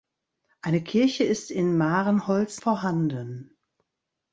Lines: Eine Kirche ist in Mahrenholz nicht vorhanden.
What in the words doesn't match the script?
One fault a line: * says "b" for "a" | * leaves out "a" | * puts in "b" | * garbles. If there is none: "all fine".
* leaves out "nicht"